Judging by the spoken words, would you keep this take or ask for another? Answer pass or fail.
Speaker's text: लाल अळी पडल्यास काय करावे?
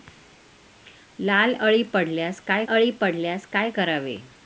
fail